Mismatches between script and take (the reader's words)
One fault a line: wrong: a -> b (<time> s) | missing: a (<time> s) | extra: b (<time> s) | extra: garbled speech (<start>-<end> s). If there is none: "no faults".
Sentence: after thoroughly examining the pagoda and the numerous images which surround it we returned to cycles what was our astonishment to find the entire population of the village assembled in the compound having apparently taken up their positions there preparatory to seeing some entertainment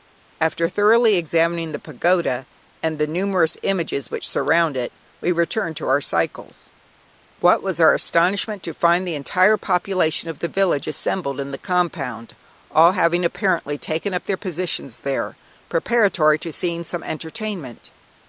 extra: our (5.9 s)
extra: all (12.7 s)